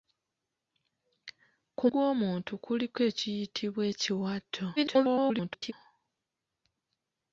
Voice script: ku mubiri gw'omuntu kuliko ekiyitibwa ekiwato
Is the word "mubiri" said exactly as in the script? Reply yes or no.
no